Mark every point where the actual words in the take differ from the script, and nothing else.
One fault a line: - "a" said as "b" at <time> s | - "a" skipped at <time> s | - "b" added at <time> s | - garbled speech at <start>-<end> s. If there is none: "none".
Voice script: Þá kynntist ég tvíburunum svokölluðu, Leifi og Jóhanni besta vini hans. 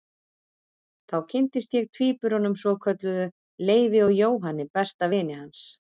none